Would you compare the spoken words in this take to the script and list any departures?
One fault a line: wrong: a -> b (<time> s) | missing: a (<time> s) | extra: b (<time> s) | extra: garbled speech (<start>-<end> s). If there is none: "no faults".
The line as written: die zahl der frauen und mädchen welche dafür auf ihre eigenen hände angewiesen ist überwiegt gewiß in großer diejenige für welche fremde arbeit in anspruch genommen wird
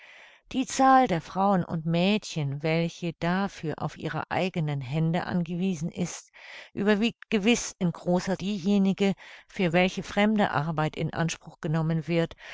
no faults